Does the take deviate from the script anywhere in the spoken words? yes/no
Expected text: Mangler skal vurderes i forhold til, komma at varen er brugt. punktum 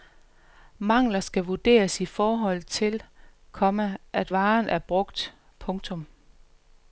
no